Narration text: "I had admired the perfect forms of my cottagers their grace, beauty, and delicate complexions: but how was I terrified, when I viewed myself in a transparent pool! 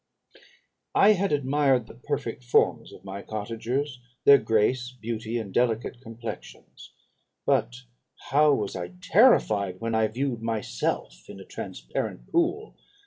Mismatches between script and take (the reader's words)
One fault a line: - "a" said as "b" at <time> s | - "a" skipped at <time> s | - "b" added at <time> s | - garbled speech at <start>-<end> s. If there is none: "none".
none